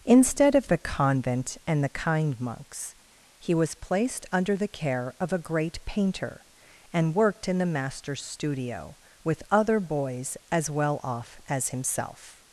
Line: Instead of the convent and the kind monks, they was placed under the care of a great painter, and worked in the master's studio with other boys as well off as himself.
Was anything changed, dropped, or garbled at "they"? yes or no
yes